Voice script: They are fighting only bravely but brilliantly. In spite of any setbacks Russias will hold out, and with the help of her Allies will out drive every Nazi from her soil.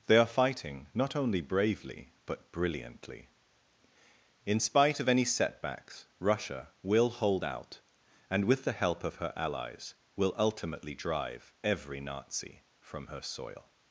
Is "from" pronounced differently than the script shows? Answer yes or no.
no